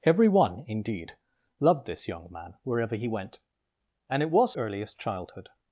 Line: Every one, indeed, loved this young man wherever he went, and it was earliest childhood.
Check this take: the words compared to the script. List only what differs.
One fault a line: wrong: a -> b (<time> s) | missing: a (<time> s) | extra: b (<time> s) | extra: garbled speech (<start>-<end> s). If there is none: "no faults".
no faults